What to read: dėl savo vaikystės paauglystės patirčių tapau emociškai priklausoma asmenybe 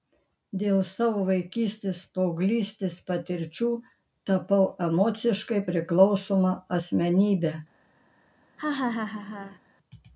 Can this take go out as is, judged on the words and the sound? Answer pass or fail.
fail